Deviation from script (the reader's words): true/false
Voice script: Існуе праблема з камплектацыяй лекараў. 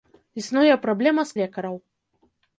true